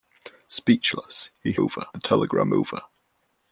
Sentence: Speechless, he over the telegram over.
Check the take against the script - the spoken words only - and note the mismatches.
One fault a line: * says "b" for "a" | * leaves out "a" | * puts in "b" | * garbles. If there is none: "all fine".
all fine